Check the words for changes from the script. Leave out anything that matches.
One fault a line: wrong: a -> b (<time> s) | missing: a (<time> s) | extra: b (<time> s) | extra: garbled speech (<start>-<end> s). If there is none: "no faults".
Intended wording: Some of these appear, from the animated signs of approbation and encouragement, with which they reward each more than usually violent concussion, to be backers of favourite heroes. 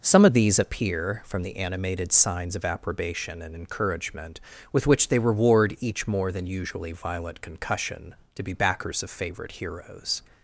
no faults